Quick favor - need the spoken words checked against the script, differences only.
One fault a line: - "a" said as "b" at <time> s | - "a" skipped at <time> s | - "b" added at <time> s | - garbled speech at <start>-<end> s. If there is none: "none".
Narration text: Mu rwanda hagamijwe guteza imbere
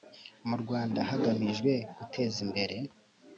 none